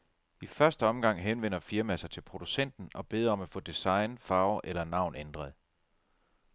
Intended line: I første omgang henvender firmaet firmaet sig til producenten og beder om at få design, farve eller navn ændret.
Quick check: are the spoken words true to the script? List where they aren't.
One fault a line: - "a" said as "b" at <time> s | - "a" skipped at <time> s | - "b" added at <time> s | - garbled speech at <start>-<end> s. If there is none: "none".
- "firmaet" skipped at 2.0 s